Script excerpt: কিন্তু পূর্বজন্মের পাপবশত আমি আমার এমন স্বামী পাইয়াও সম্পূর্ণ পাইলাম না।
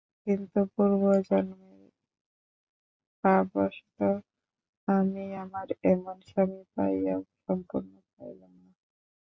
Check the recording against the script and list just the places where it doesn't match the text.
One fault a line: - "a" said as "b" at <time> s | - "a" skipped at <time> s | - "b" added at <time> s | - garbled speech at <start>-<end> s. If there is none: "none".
none